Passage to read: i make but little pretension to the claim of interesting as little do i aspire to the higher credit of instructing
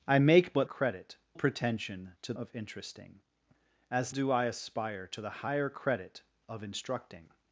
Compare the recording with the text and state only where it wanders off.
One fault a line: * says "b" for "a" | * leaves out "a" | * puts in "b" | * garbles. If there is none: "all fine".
* says "credit" for "little"
* leaves out "the claim"
* leaves out "little"